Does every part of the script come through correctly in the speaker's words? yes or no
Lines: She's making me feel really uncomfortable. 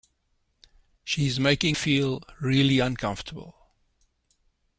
no